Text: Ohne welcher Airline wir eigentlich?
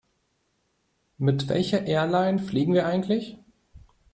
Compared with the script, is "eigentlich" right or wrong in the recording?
right